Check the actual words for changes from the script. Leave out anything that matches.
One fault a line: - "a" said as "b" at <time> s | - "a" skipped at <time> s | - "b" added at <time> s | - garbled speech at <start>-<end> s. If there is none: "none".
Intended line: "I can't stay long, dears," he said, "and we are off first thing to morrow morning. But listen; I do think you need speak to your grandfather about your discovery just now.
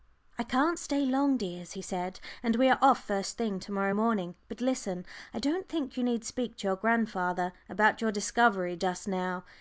- "do" said as "don't" at 5.4 s